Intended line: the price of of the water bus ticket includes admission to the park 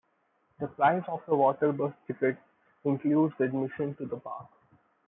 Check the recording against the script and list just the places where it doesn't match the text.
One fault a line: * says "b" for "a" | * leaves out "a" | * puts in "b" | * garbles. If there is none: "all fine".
* leaves out "of"